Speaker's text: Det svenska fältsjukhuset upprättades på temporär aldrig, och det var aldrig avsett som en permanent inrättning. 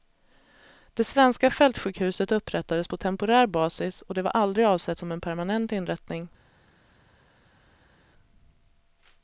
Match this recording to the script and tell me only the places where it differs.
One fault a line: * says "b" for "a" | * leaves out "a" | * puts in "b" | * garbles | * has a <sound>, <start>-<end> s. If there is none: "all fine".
* says "basis" for "aldrig"